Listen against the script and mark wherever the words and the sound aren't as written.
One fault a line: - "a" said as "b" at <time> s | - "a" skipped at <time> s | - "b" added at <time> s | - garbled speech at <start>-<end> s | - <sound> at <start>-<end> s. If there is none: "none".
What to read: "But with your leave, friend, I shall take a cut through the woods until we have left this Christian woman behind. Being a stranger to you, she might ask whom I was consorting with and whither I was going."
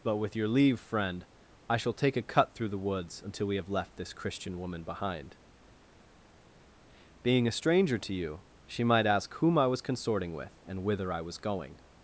none